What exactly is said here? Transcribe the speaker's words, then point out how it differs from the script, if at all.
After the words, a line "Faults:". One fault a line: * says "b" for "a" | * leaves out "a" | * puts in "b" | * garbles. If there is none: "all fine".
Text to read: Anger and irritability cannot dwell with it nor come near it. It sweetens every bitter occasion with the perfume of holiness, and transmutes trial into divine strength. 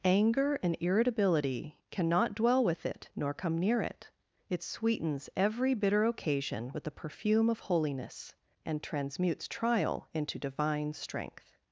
Anger and irritability cannot dwell with it nor come near it. It sweetens every bitter occasion with the perfume of holiness, and transmutes trial into divine strength.
Faults:
all fine